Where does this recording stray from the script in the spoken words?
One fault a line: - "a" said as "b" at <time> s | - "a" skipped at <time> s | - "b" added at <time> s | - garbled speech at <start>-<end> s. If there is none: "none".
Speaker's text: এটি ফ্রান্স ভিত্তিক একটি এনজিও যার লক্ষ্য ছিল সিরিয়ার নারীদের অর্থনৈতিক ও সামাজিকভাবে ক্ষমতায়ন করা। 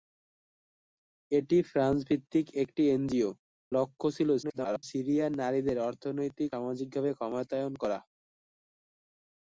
- "যার" skipped at 3.3 s
- garbled speech at 4.4-4.8 s
- "ও" skipped at 6.5 s